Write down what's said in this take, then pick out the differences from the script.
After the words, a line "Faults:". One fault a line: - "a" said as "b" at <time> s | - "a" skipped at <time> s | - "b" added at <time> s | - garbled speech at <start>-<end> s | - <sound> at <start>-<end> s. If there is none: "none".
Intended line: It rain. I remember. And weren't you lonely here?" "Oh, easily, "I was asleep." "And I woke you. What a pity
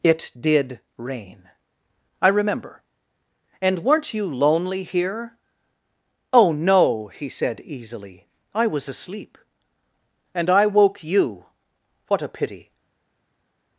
It did rain. I remember. And weren't you lonely here?" "Oh, no," he said easily, "I was asleep." "And I woke you. What a pity
Faults:
- "did" added at 0.4 s
- "no he said" added at 6.5 s